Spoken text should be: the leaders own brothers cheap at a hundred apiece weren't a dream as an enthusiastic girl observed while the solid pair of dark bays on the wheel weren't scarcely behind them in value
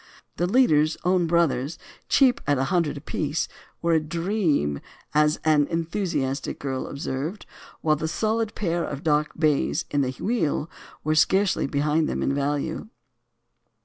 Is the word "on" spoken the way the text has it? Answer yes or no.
no